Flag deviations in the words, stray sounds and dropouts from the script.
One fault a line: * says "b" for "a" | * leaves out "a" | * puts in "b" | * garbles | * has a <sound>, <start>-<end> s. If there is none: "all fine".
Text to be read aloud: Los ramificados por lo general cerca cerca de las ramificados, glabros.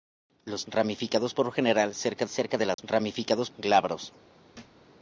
* has a dropout, 2.7-2.8 s
* has a thud, 4.5-4.9 s